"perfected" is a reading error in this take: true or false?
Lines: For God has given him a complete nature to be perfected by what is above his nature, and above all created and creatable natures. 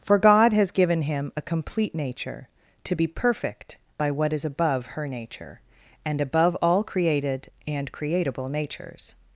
true